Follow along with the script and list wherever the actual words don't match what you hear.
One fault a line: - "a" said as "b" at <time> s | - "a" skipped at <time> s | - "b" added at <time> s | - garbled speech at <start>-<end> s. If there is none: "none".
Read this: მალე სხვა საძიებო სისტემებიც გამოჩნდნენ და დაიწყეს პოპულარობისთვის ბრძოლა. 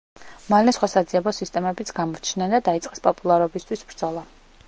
none